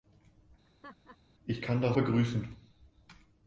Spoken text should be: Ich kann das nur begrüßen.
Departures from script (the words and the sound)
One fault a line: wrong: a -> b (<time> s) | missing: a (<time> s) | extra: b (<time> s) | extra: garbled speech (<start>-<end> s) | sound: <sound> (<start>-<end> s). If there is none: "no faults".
sound: laugh (0.6-1.2 s)
missing: nur (2.0 s)